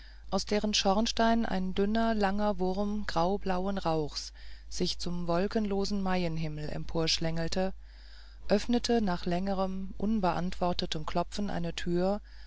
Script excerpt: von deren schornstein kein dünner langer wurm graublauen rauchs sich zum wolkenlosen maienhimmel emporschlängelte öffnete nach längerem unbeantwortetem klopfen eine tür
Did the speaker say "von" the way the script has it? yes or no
no